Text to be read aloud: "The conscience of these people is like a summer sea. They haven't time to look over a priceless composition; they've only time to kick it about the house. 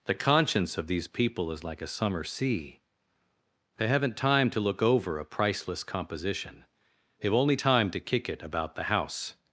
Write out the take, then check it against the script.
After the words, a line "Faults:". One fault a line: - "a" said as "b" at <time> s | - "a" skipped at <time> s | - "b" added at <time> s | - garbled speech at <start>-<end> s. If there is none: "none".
"The conscience of these people is like a summer sea. They haven't time to look over a priceless composition; they've only time to kick it about the house.
Faults:
none